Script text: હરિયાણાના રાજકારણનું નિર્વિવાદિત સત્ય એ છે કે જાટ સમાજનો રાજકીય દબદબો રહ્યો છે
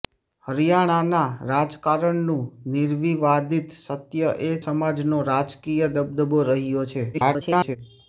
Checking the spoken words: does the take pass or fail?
fail